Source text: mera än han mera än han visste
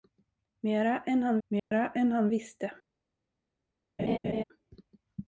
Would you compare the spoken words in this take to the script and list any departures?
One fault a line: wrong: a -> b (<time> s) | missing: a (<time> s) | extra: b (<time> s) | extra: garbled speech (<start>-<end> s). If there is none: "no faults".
no faults